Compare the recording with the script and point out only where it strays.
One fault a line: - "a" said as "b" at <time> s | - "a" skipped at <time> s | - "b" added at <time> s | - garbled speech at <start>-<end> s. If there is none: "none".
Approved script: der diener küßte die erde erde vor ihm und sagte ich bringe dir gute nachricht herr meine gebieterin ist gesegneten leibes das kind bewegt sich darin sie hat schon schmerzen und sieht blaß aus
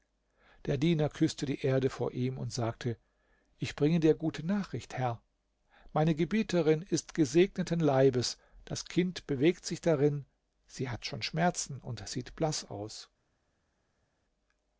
- "erde" skipped at 1.9 s